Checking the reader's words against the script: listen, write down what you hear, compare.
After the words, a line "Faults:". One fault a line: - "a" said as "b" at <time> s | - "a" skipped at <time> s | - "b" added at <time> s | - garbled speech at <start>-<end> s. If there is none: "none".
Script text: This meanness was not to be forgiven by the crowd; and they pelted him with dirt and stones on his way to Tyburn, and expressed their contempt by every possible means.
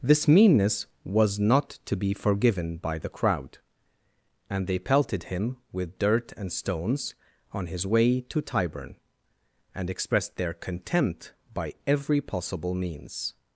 This meanness was not to be forgiven by the crowd; and they pelted him with dirt and stones on his way to Tyburn, and expressed their contempt by every possible means.
Faults:
none